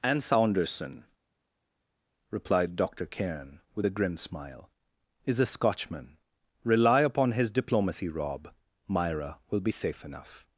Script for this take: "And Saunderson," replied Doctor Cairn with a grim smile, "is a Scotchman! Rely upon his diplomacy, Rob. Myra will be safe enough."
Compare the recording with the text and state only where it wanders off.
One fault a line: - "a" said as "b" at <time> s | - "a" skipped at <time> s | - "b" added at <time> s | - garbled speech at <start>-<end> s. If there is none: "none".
none